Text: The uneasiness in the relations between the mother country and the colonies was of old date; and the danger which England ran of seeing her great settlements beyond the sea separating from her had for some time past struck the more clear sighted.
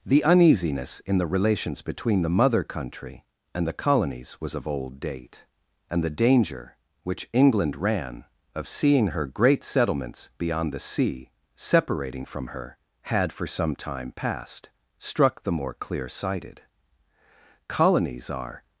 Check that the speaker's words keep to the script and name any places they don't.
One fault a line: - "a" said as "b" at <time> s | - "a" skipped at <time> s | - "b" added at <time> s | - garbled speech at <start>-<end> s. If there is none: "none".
- "Colonies are" added at 17.7 s